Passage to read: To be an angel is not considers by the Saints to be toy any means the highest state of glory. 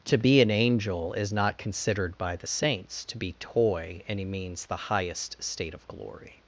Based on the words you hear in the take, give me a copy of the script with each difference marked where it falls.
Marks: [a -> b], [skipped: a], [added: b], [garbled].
To be an angel is not [considers -> considered] by the Saints to be toy any means the highest state of glory.